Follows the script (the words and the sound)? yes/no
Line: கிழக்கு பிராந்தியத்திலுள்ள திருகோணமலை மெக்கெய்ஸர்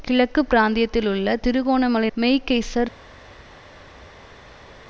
yes